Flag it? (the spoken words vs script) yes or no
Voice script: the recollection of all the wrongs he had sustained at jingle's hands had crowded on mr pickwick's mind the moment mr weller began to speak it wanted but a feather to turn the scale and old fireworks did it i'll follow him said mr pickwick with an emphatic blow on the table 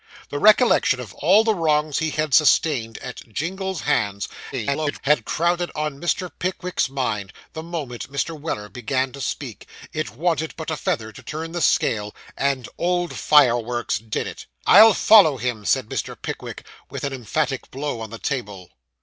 yes